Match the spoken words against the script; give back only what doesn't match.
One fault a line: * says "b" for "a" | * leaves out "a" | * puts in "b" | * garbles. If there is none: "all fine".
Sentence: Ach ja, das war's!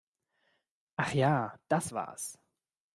all fine